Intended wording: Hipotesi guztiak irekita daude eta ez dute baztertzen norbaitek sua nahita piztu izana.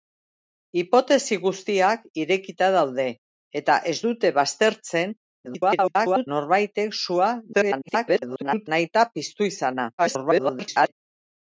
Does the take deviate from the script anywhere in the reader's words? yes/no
yes